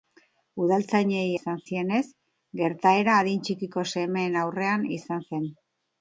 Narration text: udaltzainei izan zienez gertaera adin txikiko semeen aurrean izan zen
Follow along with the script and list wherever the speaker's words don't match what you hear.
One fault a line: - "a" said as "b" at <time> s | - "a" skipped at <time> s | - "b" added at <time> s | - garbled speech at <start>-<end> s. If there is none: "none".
none